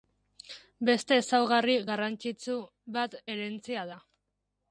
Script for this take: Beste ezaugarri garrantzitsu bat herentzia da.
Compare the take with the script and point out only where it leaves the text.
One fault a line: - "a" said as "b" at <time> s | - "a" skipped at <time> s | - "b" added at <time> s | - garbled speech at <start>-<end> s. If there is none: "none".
none